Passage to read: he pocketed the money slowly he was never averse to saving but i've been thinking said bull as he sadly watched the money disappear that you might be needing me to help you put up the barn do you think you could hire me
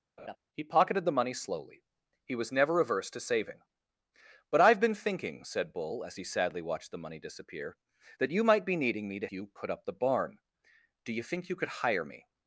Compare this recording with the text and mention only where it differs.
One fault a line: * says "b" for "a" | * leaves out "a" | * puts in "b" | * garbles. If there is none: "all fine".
* leaves out "help"